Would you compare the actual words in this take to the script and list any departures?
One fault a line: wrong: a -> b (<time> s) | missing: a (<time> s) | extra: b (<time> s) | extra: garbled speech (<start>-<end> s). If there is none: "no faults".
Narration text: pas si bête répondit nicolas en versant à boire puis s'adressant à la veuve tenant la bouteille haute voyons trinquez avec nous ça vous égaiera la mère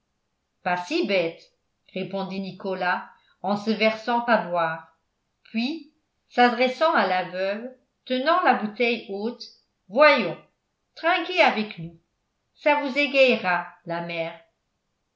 extra: se (3.6 s)